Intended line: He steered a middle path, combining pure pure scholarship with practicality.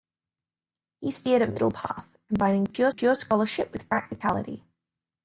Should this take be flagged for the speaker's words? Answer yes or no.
no